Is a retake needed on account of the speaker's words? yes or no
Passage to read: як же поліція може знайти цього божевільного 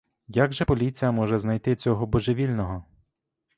no